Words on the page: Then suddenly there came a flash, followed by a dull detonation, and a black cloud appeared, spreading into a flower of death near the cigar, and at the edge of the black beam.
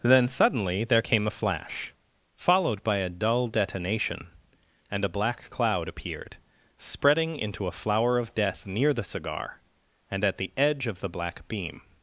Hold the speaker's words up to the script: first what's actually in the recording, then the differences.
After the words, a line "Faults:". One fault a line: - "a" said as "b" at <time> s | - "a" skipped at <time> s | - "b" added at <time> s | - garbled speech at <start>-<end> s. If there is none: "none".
Then suddenly there came a flash, followed by a dull detonation, and a black cloud appeared, spreading into a flower of death near the cigar, and at the edge of the black beam.
Faults:
none